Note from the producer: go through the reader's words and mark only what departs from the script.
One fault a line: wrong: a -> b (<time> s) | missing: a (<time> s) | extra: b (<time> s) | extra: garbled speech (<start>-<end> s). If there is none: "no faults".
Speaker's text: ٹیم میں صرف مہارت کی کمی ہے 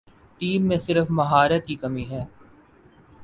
no faults